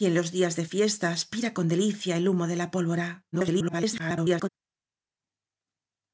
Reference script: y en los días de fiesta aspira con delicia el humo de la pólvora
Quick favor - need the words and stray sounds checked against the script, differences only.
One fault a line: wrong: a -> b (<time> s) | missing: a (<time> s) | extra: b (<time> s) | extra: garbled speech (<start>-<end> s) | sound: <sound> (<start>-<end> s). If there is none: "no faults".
extra: garbled speech (3.3-4.5 s)